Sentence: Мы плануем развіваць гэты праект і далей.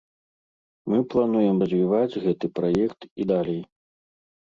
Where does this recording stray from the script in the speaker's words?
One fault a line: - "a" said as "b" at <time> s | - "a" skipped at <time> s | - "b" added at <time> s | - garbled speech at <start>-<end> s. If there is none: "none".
none